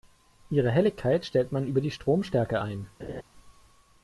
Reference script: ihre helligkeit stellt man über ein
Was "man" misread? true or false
false